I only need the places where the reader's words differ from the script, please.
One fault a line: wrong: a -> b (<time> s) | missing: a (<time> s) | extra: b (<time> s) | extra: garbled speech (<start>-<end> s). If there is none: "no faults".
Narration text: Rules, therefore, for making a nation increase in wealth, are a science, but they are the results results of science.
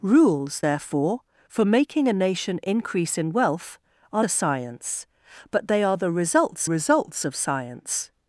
no faults